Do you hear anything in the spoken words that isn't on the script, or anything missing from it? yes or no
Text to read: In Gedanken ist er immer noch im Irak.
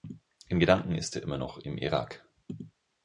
no